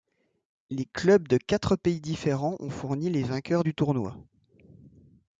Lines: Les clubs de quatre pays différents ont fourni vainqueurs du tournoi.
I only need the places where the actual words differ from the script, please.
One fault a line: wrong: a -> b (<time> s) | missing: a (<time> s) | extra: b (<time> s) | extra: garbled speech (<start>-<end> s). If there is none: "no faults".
extra: les (3.1 s)